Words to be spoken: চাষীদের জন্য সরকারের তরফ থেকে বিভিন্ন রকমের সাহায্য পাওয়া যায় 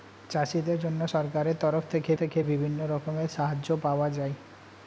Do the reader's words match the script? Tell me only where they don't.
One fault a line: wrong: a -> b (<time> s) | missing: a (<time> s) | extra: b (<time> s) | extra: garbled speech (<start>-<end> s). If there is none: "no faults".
extra: থেকে (2.2 s)